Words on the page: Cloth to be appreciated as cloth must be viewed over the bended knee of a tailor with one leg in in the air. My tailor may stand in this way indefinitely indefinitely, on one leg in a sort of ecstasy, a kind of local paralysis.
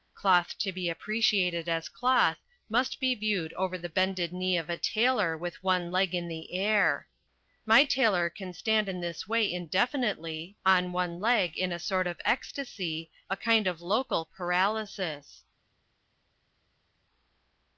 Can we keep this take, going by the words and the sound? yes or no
no